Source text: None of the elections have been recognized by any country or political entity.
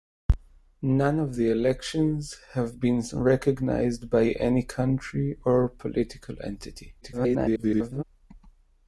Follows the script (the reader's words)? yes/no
no